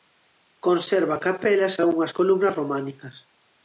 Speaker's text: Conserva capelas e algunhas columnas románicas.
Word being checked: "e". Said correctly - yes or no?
yes